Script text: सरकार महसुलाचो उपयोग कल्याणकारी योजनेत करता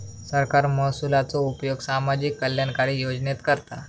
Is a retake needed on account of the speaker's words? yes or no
yes